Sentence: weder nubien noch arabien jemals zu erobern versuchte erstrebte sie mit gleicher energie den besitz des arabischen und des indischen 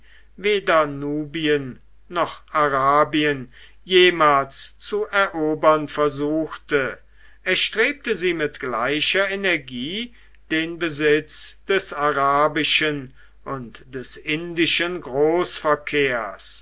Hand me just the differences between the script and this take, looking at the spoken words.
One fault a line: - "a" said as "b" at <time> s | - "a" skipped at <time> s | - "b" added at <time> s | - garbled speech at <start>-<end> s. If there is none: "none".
none